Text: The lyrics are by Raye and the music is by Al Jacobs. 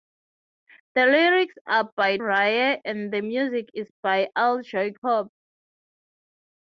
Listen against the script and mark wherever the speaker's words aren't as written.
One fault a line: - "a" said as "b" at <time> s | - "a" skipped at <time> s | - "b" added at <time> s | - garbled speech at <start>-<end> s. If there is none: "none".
none